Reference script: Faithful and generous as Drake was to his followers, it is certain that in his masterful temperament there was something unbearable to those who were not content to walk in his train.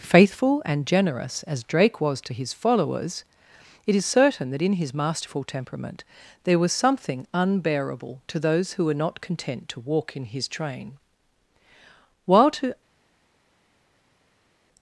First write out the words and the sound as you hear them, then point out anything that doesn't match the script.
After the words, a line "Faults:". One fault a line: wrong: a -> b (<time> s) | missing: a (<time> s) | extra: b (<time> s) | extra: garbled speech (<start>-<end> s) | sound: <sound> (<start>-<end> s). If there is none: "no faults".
Faithful and generous as Drake was to his followers, it is certain that in his masterful temperament there was something unbearable to those who were not content to walk in his train. While to
Faults:
extra: While to (12.2 s)